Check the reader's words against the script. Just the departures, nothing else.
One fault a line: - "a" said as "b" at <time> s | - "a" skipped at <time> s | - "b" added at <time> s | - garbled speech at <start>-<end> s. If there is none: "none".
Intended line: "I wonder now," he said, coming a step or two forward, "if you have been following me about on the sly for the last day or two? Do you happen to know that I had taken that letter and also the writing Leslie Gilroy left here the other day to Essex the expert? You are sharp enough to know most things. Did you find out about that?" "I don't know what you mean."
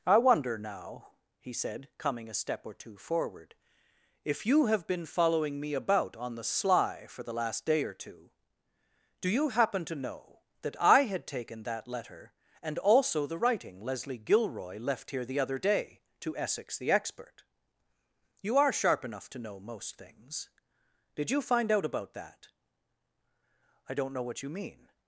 none